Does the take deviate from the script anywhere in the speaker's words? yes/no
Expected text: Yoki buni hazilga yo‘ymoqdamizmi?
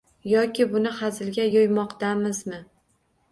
no